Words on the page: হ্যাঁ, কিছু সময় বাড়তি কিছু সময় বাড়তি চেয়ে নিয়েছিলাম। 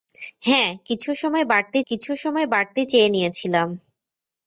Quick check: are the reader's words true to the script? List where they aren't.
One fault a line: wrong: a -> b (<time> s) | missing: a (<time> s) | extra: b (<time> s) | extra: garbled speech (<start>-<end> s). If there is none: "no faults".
no faults